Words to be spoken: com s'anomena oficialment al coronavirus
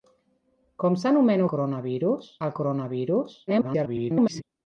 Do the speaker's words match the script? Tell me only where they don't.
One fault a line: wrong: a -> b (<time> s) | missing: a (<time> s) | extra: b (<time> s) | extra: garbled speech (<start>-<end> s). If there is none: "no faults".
wrong: oficialment -> coronavirus (1.5 s)
extra: garbled speech (3.5-4.4 s)